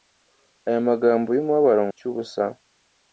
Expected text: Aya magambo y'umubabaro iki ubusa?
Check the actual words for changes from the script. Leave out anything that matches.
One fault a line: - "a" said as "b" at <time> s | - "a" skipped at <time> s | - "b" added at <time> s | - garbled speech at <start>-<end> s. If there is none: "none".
none